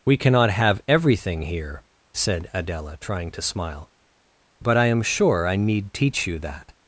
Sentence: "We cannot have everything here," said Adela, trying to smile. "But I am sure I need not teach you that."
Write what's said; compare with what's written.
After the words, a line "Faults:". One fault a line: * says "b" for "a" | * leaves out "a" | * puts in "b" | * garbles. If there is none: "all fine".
"We cannot have everything here," said Adela, trying to smile. "But I am sure I need teach you that."
Faults:
* leaves out "not"